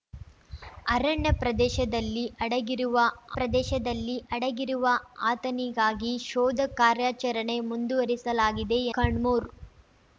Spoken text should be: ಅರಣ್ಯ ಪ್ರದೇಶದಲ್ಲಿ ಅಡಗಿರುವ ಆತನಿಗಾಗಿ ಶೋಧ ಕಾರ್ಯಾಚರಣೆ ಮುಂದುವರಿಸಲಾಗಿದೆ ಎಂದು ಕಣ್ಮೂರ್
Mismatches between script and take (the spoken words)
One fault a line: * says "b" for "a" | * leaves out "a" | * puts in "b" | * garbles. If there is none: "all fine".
* puts in "ಪ್ರದೇಶದಲ್ಲಿ ಅಡಗಿರುವ"
* leaves out "ಎಂದು"